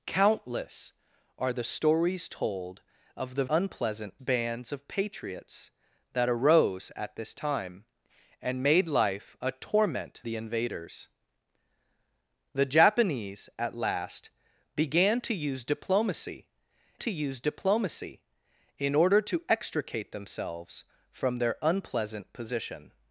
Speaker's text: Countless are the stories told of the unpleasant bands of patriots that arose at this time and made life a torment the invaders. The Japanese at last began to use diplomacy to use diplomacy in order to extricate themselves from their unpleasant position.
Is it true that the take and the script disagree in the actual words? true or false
false